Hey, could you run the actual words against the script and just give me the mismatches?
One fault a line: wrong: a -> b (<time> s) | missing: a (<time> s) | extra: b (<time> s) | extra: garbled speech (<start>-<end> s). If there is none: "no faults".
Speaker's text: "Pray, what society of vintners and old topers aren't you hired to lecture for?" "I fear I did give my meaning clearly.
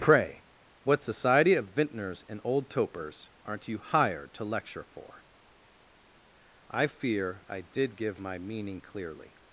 no faults